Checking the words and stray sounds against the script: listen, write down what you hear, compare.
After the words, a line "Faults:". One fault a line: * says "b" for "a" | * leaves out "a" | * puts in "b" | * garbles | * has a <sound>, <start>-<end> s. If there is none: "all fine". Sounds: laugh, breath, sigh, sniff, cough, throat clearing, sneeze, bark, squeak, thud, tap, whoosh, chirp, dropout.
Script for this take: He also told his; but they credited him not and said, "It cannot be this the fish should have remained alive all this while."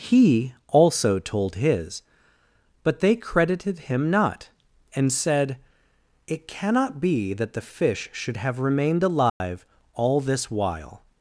He also told his; but they credited him not and said, "It cannot be that the fish should have remained alive all this while."
Faults:
* says "that" for "this"
* has a dropout, 9.3-9.4 s